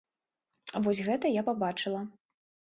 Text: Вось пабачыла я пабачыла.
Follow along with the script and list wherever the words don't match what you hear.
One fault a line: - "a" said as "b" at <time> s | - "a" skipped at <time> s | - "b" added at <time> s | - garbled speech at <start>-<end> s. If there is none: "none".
- "пабачыла" said as "гэта" at 1.1 s